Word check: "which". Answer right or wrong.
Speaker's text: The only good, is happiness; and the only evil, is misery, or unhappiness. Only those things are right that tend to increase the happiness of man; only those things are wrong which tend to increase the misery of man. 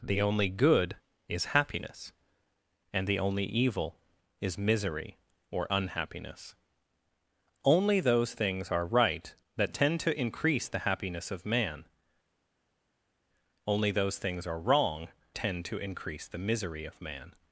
wrong